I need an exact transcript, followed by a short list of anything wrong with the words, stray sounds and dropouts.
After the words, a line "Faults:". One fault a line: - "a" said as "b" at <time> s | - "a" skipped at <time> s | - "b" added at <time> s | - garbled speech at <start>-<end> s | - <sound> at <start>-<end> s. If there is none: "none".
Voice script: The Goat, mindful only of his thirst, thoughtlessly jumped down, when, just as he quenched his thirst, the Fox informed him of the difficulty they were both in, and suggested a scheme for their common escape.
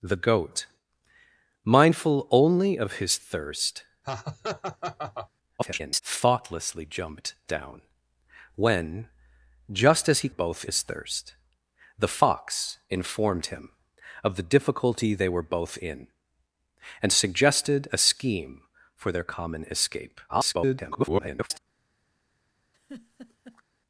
The Goat, mindful only of his thirst, [garbled] thoughtlessly jumped down, when, just as he both his thirst, the Fox informed him of the difficulty they were both in, and suggested a scheme for their common escape. [garbled]
Faults:
- laugh at 4.0-5.3 s
- garbled speech at 5.6-6.0 s
- "quenched" said as "both" at 10.3 s
- garbled speech at 20.3-21.6 s
- laugh at 22.7-23.6 s